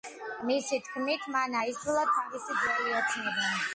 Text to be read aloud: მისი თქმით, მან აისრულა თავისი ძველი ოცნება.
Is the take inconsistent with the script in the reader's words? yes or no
no